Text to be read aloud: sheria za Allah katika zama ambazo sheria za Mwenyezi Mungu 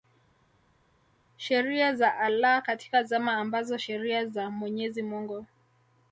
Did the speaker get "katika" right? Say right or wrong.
right